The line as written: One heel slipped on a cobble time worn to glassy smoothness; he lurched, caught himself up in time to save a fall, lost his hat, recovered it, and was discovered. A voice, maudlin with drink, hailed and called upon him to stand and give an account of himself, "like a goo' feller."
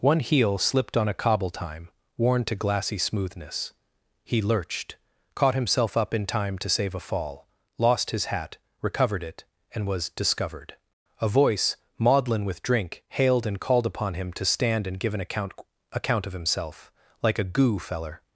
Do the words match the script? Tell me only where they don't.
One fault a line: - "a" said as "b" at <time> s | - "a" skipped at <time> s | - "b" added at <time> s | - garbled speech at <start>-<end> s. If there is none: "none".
- "account" added at 15.9 s